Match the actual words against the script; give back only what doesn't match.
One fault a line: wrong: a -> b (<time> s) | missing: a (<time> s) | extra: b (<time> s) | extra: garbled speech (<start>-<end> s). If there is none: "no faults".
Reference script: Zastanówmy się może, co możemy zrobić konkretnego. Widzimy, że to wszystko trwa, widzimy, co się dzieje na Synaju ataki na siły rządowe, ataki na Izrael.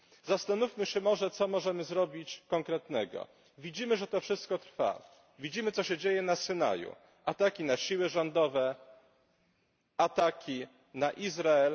no faults